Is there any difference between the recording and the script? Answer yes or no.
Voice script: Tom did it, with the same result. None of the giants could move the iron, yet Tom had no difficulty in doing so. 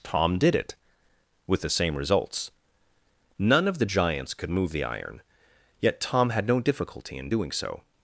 yes